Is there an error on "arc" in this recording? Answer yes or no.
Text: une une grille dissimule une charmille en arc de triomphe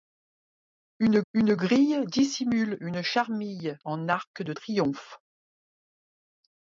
no